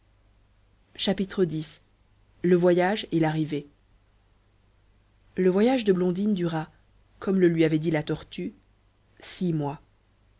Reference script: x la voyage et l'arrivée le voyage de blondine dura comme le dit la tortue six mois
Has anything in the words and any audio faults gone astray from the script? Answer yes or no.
yes